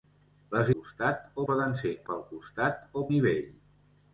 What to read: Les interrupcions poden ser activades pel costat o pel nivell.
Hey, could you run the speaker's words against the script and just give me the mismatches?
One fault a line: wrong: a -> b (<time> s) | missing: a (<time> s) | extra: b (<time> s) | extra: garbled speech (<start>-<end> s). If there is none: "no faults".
wrong: interrupcions -> costat (0.8 s)
missing: activades (1.9 s)
missing: pel (3.1 s)